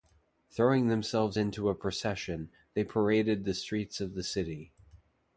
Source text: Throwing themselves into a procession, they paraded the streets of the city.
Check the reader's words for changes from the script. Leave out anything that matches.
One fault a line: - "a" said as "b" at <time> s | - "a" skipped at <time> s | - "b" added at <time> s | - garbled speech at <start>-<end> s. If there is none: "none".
none